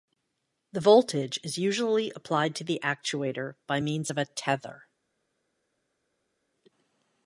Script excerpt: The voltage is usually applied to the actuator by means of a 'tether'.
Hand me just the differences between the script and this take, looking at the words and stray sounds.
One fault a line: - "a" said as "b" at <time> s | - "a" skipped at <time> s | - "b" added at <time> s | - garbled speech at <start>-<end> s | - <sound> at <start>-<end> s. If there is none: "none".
none